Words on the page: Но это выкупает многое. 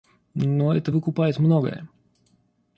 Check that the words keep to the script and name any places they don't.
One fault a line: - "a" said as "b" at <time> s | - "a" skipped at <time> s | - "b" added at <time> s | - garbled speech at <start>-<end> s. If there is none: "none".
none